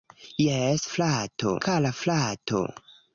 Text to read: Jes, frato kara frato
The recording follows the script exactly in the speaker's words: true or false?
true